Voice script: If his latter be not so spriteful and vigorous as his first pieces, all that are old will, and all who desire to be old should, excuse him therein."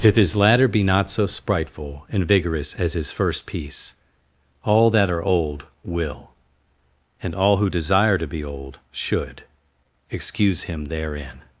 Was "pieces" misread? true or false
true